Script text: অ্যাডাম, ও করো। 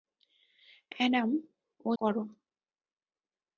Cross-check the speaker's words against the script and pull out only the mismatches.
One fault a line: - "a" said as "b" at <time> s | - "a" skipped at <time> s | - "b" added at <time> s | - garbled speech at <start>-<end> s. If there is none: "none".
none